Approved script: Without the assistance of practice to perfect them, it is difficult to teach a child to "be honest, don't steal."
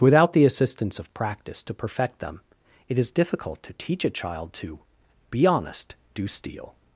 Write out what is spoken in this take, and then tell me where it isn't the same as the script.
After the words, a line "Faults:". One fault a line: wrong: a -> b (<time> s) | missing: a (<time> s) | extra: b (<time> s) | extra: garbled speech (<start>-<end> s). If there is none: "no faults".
Without the assistance of practice to perfect them, it is difficult to teach a child to "be honest, do steal."
Faults:
wrong: don't -> do (6.2 s)